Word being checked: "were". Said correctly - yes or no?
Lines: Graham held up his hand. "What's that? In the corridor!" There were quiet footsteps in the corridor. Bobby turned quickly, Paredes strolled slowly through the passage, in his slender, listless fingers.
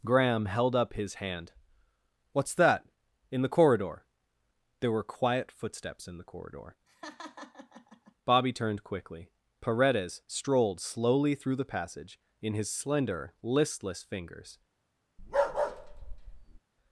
yes